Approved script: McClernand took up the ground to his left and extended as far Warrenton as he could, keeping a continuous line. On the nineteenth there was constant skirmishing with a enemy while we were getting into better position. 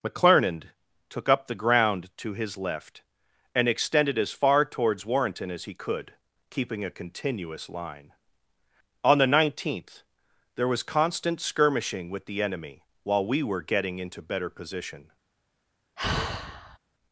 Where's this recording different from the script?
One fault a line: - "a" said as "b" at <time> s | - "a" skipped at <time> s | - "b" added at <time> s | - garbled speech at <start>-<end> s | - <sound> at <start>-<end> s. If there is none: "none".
- "towards" added at 4.7 s
- "a" said as "the" at 12.2 s
- sigh at 16.0-16.8 s